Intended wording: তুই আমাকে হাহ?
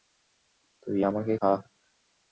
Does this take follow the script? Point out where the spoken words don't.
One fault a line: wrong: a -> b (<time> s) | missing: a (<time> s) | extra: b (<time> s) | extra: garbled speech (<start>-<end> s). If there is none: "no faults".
no faults